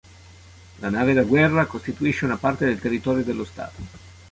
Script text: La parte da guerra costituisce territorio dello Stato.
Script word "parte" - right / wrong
wrong